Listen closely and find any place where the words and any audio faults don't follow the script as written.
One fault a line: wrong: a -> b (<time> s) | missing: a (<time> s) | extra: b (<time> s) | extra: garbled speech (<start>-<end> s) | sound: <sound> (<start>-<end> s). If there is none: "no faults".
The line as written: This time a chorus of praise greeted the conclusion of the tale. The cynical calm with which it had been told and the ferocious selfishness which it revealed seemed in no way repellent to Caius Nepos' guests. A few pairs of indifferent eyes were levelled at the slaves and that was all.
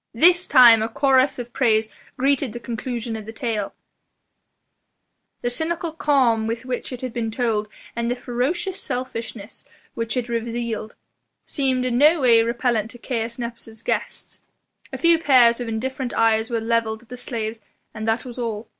no faults